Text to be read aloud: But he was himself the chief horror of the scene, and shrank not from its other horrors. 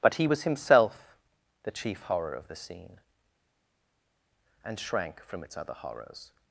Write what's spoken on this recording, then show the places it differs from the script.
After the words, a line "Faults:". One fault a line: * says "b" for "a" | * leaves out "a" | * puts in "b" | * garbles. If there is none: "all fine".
But he was himself the chief horror of the scene, and shrank from its other horrors.
Faults:
* leaves out "not"